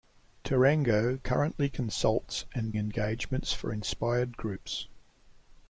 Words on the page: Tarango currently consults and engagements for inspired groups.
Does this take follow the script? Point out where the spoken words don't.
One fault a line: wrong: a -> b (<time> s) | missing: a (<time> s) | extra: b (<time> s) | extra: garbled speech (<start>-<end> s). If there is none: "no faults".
no faults